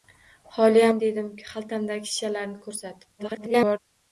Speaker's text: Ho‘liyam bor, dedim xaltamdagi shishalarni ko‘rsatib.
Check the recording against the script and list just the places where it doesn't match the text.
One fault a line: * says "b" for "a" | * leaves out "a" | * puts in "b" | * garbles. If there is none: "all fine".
* leaves out "bor"
* garbles